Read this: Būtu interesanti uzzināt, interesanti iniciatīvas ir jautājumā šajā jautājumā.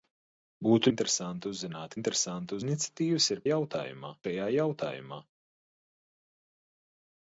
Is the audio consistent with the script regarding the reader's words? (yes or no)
yes